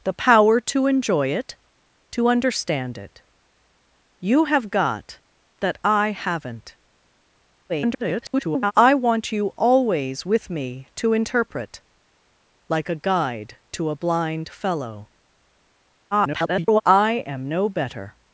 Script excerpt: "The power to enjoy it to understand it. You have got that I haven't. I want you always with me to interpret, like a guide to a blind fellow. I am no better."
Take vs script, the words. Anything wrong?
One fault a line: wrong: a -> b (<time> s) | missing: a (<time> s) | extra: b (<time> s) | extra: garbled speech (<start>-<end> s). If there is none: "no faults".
extra: garbled speech (7.7-8.7 s)
extra: garbled speech (16.1-16.8 s)